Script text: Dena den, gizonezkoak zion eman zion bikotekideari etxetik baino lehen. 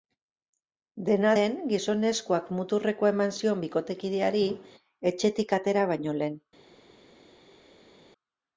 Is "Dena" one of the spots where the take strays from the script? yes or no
no